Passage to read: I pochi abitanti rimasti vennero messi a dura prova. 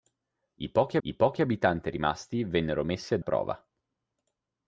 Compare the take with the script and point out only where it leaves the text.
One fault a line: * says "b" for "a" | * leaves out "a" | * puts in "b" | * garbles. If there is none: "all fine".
* puts in "I pochi"
* leaves out "dura"